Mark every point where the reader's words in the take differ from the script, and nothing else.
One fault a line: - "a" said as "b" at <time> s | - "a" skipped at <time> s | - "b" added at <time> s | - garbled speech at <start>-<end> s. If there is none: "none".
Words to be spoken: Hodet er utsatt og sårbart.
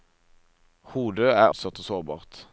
none